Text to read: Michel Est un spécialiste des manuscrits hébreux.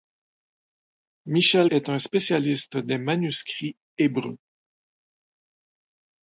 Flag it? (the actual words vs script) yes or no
no